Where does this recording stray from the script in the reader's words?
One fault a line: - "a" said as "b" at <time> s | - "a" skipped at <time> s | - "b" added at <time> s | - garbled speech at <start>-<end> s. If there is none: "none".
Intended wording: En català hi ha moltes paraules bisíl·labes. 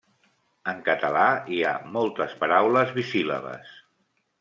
none